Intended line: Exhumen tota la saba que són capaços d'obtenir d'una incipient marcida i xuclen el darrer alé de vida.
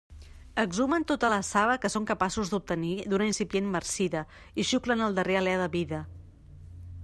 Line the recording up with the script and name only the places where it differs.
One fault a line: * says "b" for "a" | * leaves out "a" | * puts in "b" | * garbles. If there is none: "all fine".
all fine